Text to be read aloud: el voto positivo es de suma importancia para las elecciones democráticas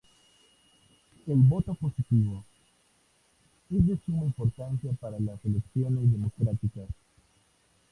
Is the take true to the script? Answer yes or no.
yes